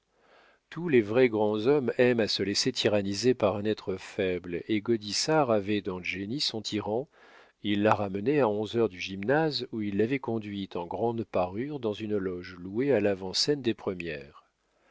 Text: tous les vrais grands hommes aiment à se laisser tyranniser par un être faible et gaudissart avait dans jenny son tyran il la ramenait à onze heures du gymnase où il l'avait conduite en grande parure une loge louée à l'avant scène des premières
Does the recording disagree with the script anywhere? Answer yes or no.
yes